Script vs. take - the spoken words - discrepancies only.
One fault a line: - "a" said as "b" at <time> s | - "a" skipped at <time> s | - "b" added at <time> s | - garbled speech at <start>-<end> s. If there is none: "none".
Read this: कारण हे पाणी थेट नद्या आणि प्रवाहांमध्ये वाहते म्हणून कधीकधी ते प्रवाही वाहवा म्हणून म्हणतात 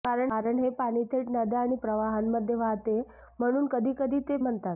- "प्रवाही वाहवा म्हणून" skipped at 4.4 s